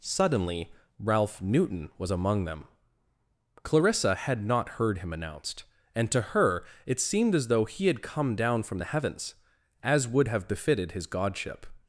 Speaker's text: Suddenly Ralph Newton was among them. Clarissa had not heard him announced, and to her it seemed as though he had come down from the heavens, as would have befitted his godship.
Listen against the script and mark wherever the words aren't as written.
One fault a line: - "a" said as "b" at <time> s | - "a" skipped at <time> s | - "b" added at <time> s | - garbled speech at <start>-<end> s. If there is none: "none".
none